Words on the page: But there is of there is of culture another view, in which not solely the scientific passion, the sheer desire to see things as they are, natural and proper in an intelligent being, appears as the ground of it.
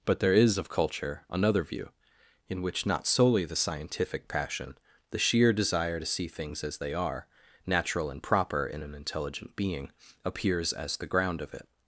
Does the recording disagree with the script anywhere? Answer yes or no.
yes